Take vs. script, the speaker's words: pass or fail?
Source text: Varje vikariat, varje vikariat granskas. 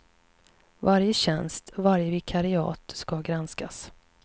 fail